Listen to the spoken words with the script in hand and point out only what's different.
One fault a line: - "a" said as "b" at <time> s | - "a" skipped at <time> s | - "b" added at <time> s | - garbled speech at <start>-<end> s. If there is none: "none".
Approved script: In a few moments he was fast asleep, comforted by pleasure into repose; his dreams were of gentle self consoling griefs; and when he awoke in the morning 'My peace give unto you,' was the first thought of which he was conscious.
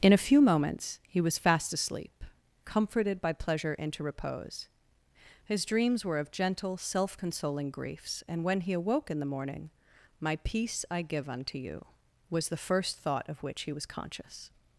- "I" added at 10.9 s